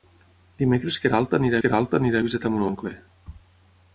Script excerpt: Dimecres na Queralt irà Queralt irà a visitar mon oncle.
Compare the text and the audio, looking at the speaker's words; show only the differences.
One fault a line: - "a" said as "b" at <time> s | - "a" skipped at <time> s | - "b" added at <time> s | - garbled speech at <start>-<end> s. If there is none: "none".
none